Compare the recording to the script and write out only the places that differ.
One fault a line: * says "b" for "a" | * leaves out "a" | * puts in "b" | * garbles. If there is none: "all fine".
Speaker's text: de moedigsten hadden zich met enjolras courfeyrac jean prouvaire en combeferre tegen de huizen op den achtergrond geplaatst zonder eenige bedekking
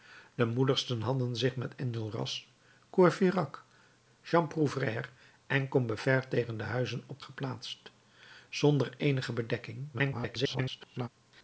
* leaves out "den achtergrond"
* garbles